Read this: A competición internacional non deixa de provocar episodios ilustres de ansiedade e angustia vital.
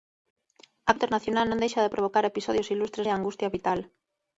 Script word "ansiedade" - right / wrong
wrong